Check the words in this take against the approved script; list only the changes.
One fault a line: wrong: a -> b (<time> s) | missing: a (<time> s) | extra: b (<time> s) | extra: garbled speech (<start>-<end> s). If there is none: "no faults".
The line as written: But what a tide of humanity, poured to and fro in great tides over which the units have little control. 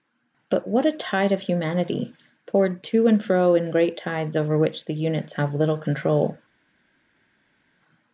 no faults